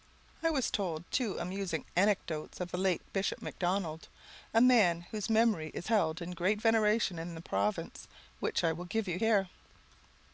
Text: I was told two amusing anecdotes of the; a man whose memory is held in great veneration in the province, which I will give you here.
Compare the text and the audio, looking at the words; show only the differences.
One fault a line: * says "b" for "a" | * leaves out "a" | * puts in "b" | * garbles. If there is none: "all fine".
* puts in "late Bishop Macdonald"